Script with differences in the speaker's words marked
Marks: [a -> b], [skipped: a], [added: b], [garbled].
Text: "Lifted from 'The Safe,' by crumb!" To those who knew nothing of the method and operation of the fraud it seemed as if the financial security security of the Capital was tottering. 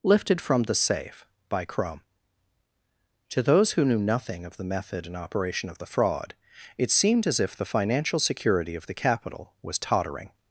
"Lifted from 'The Safe,' by crumb!" To those who knew nothing of the method and operation of the fraud it seemed as if the financial security [skipped: security] of the Capital was tottering.